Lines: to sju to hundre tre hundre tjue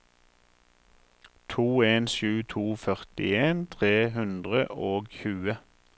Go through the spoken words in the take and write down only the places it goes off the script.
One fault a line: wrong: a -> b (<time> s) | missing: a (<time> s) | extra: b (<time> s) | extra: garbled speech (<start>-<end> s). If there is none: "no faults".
extra: en (1.9 s)
wrong: hundre -> førtien (2.9 s)
extra: og (4.9 s)